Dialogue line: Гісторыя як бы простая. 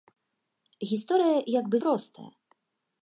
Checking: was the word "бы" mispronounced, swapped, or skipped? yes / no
no